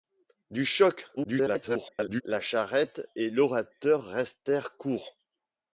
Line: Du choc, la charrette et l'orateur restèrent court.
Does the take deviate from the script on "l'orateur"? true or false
false